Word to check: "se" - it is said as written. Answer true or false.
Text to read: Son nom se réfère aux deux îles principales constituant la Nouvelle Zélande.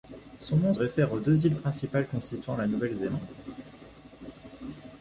false